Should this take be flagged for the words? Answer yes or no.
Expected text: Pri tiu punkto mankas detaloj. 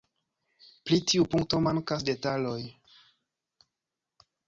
no